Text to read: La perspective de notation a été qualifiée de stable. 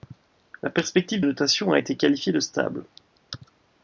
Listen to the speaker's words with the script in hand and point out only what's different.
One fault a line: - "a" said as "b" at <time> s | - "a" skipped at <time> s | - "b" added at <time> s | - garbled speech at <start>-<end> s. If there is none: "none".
- "de" skipped at 1.2 s